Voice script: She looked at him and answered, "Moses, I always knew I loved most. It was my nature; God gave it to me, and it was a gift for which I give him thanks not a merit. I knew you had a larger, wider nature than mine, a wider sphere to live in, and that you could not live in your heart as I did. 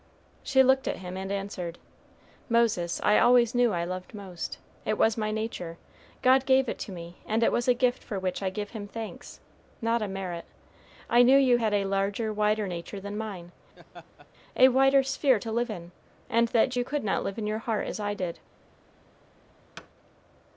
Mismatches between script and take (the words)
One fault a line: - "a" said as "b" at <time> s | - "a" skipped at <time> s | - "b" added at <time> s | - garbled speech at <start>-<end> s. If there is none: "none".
none